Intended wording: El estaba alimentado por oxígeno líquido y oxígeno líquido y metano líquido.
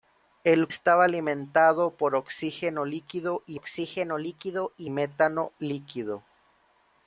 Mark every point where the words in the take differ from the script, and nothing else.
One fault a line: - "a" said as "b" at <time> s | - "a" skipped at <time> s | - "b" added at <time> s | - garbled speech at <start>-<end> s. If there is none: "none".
none